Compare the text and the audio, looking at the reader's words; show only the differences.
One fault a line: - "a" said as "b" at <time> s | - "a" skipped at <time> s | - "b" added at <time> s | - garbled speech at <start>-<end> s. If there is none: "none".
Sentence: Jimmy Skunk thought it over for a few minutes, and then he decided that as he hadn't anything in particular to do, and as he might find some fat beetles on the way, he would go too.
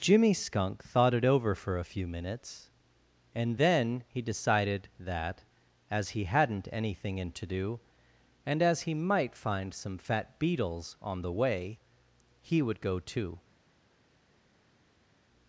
- "particular" skipped at 7.3 s